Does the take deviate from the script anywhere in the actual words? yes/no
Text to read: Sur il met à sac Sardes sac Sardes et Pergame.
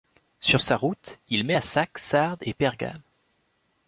yes